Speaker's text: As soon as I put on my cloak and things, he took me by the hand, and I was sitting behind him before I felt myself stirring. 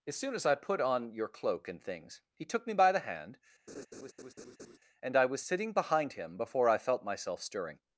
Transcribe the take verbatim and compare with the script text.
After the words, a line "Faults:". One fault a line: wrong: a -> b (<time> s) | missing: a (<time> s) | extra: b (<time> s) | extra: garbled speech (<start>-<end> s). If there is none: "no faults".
As soon as I put on your cloak and things, he took me by the hand, and I was sitting behind him before I felt myself stirring.
Faults:
wrong: my -> your (1.1 s)